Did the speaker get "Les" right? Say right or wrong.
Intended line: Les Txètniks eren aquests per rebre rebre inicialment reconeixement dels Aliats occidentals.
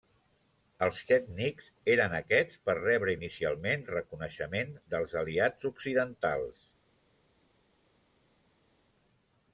wrong